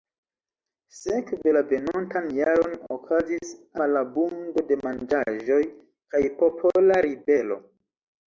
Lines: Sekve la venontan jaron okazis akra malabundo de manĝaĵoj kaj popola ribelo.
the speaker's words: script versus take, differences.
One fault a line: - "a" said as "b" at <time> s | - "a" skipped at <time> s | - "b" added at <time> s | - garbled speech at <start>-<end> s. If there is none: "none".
- "akra" skipped at 3.5 s